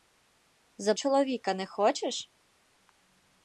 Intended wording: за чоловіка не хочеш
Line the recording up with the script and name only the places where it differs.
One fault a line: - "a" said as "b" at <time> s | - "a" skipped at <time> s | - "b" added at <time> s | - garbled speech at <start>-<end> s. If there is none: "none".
none